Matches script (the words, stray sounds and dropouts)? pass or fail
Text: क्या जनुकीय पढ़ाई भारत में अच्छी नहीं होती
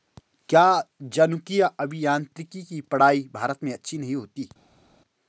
fail